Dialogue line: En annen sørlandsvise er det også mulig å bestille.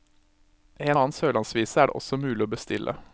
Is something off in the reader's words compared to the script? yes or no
no